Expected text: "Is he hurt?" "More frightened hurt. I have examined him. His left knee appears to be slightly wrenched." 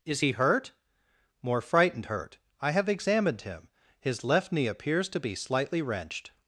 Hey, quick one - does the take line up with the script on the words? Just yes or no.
yes